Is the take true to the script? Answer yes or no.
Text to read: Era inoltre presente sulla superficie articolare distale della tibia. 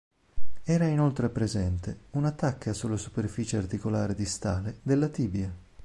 no